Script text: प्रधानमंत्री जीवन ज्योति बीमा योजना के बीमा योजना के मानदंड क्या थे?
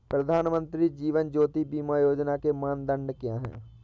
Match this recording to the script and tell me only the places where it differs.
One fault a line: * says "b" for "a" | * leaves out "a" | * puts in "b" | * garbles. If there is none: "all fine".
* leaves out "बीमा योजना के"
* says "हैं" for "थे"